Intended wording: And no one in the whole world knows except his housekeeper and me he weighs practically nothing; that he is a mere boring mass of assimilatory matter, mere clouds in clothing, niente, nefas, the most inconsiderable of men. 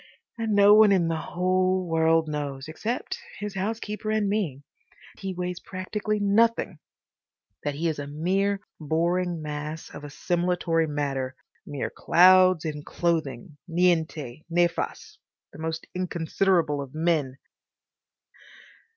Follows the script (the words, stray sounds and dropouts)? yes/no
yes